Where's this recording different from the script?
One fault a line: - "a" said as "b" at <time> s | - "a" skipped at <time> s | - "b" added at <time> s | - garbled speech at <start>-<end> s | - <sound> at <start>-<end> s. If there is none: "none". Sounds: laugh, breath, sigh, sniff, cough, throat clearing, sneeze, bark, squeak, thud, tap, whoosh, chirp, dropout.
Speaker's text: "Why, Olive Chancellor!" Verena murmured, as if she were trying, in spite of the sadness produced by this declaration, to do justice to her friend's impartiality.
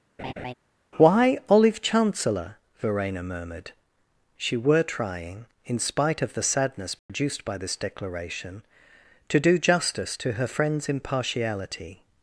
- laugh at 0.2-0.5 s
- "as if" skipped at 3.7 s
- dropout at 7.0-7.1 s